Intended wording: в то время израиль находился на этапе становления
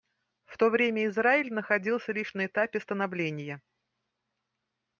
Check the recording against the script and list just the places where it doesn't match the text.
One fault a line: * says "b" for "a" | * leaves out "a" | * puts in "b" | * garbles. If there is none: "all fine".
* puts in "лишь"